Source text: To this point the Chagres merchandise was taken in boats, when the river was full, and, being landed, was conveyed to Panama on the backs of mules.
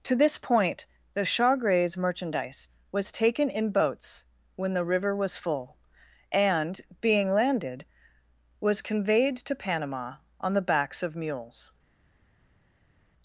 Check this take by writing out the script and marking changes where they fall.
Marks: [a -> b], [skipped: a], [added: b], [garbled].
To this point the Chagres merchandise was taken in boats, when the river was full, and, being landed, was conveyed to Panama on the backs of mules.